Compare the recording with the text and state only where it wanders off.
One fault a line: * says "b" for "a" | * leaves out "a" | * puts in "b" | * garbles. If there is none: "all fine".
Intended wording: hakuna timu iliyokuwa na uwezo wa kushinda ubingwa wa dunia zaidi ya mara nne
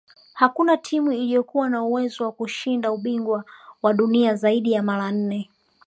all fine